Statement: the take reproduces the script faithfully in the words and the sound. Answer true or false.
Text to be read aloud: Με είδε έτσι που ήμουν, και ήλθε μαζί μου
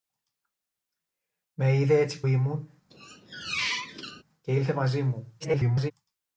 false